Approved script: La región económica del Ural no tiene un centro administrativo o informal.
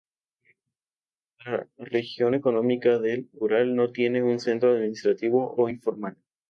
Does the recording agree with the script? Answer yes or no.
yes